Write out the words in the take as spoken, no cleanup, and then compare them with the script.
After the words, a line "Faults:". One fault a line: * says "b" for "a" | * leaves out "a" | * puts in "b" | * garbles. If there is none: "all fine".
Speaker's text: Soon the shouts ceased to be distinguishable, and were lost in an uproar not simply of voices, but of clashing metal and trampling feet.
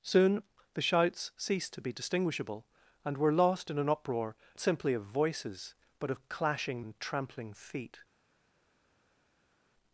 Soon the shouts ceased to be distinguishable, and were lost in an uproar simply of voices, but of clashing and trampling feet.
Faults:
* leaves out "not"
* leaves out "metal"